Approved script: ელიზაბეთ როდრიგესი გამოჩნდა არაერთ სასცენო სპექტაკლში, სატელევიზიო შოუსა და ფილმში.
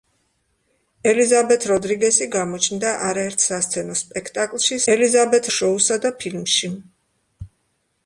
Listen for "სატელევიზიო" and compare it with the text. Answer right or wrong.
wrong